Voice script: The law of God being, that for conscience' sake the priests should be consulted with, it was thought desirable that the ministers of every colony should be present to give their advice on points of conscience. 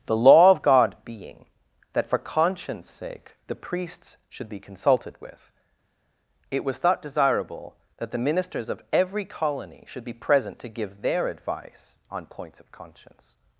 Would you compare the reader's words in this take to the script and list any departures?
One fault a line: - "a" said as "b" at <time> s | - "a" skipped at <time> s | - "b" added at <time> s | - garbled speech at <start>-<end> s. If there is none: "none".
none